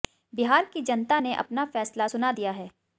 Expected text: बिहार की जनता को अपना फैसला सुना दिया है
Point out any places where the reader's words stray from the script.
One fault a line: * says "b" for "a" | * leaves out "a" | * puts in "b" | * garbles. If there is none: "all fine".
* says "ने" for "को"